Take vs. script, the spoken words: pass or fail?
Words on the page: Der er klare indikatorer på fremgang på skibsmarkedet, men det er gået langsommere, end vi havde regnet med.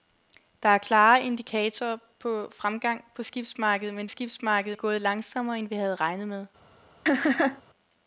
fail